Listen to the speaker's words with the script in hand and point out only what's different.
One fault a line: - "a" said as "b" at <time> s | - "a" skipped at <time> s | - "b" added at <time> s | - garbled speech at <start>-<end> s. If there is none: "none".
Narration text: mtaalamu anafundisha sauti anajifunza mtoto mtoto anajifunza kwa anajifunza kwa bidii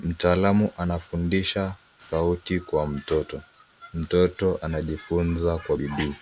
- "anajifunza" said as "kwa" at 2.6 s
- "anajifunza kwa" skipped at 5.8 s